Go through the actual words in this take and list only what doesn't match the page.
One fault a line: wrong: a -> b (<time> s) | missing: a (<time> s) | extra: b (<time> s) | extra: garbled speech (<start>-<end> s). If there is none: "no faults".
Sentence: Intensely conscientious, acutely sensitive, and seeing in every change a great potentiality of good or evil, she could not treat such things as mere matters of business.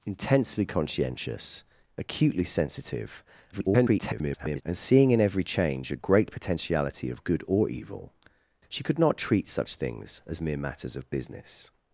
extra: garbled speech (3.5-4.6 s)